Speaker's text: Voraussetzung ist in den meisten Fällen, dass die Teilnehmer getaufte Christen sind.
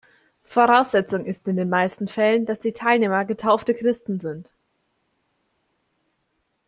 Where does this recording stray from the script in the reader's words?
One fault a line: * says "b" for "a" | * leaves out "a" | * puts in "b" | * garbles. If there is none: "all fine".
all fine